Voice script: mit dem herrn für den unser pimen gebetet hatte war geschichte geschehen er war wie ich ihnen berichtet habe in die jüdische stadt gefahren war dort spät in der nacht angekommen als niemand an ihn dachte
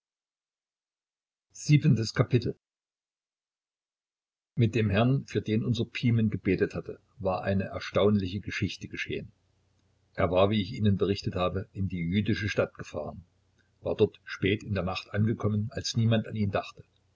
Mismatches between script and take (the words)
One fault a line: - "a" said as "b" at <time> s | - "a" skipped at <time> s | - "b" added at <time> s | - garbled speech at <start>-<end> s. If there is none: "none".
- "eine erstaunliche" added at 7.4 s